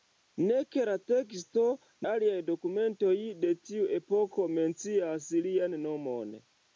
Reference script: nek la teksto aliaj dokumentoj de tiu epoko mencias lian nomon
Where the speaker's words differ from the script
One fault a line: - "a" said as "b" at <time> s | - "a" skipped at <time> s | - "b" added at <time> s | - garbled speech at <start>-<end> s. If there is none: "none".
none